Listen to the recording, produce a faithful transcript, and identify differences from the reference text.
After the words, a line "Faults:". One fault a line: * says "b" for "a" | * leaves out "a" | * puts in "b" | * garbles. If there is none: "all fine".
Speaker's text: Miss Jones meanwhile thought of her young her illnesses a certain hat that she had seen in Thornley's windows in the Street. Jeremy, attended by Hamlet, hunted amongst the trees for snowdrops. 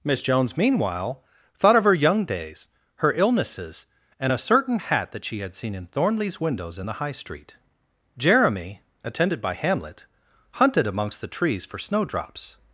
Miss Jones meanwhile thought of her young days, her illnesses and a certain hat that she had seen in Thornley's windows in the High Street. Jeremy, attended by Hamlet, hunted amongst the trees for snowdrops.
Faults:
* puts in "days"
* puts in "and"
* puts in "High"